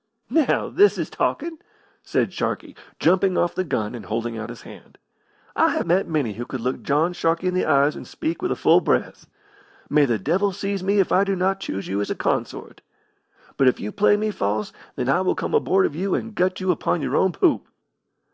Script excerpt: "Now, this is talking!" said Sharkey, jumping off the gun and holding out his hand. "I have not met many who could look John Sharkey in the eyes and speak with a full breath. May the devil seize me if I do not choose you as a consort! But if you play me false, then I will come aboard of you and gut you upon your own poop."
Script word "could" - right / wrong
right